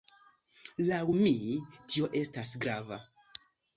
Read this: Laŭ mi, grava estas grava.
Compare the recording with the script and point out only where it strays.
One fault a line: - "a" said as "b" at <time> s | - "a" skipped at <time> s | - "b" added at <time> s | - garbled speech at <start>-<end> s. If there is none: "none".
- "grava" said as "tio" at 1.9 s